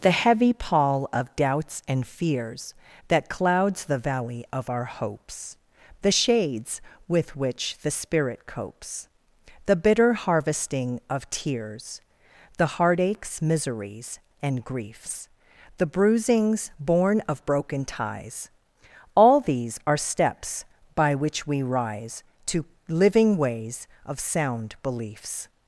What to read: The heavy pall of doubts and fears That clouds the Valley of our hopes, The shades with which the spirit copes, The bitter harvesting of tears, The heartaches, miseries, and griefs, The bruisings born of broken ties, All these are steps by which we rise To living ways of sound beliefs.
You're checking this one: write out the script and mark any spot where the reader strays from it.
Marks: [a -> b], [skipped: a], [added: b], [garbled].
The heavy pall of doubts and fears That clouds the Valley of our hopes, The shades with which the spirit copes, The bitter harvesting of tears, The heartaches, miseries, and griefs, The bruisings born of broken ties, All these are steps by which we rise To living ways of sound beliefs.